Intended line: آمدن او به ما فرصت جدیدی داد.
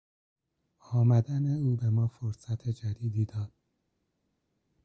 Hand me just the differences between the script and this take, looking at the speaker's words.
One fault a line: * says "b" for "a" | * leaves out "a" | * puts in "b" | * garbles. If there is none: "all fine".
all fine